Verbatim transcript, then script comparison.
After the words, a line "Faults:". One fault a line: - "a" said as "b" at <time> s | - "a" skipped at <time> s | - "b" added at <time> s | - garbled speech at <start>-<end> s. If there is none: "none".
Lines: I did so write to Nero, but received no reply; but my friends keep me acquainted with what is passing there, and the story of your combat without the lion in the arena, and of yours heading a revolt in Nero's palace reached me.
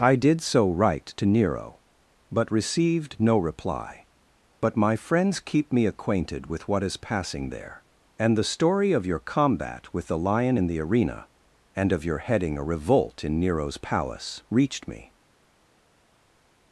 I did so write to Nero, but received no reply; but my friends keep me acquainted with what is passing there, and the story of your combat with the lion in the arena, and of your heading a revolt in Nero's palace reached me.
Faults:
- "without" said as "with" at 9.9 s
- "yours" said as "your" at 12.0 s